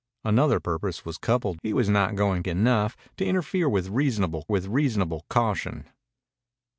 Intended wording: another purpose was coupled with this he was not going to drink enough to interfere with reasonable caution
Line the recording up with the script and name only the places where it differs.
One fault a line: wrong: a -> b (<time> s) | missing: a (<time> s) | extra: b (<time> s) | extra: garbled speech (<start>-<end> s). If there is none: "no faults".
missing: with this (1.6 s)
missing: to drink (2.4 s)
extra: with reasonable (4.5 s)